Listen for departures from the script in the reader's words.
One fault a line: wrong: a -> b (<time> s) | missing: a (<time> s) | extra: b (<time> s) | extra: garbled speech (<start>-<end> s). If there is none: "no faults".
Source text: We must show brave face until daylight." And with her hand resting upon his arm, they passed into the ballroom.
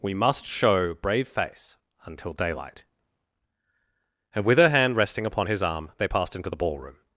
no faults